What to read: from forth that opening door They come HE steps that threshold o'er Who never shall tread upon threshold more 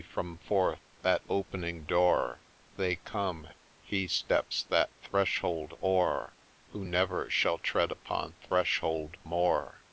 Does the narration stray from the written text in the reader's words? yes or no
no